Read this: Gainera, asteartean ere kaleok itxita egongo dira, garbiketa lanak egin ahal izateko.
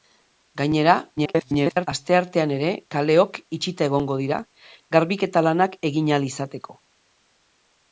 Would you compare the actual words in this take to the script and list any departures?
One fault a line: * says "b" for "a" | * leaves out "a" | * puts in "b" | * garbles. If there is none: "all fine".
* garbles